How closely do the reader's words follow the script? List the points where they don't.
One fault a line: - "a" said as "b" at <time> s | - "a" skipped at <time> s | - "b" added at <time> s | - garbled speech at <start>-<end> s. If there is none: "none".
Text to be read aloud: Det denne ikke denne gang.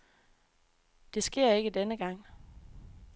- "denne" said as "sker" at 1.2 s